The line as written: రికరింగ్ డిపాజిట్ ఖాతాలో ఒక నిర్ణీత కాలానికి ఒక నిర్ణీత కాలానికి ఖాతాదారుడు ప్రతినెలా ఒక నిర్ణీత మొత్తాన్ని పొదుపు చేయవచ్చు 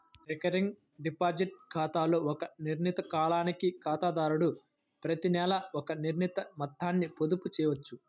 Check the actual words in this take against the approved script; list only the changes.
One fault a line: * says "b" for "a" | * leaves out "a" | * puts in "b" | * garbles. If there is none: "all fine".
* leaves out "ఒక నిర్ణీత కాలానికి"